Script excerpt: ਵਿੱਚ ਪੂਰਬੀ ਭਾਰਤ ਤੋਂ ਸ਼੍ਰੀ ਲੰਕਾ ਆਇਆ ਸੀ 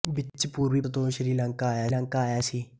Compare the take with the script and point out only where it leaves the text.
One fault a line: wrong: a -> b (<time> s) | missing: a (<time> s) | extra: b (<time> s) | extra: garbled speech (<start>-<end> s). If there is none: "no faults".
missing: ਭਾਰਤ (0.8 s)
extra: ਲੰਕਾ ਆਇਆ (1.9 s)